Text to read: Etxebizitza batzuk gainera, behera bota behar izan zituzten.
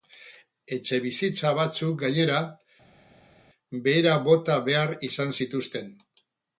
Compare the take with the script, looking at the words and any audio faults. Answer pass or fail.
pass